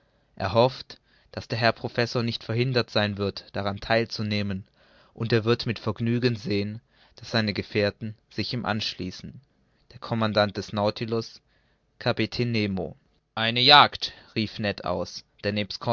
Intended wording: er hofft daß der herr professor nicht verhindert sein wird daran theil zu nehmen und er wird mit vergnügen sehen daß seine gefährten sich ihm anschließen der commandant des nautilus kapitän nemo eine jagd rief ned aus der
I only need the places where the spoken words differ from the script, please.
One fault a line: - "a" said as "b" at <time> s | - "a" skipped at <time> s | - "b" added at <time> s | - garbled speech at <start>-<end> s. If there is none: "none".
none